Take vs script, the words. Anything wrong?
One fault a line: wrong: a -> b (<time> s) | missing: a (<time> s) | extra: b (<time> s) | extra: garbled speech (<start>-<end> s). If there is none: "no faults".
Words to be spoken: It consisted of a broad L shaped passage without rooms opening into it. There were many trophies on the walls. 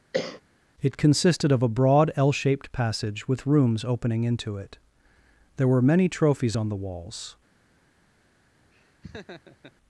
wrong: without -> with (3.3 s)